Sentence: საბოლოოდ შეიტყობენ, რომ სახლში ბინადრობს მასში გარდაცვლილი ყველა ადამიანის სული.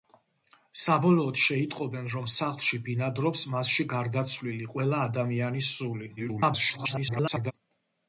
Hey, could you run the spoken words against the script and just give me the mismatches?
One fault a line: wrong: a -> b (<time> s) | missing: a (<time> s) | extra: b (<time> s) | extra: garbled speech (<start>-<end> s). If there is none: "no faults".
extra: garbled speech (6.2-7.5 s)